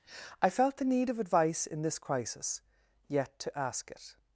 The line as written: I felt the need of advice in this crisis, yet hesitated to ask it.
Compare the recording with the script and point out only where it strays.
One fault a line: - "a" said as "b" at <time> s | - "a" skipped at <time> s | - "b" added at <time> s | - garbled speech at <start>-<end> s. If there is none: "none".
- "hesitated" skipped at 3.4 s